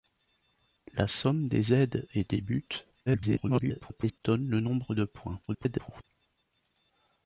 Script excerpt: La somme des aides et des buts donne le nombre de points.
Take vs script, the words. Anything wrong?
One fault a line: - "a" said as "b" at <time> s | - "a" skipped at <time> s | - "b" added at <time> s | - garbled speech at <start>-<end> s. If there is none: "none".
- garbled speech at 3.1-4.2 s
- garbled speech at 5.5-6.0 s